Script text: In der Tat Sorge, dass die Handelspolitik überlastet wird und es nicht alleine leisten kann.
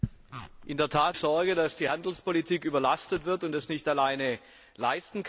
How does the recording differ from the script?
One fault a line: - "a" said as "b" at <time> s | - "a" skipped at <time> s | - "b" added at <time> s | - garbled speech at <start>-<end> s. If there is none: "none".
none